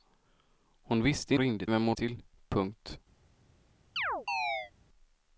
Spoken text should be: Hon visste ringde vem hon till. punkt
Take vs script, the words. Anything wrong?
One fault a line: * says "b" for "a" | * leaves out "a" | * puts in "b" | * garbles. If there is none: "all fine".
all fine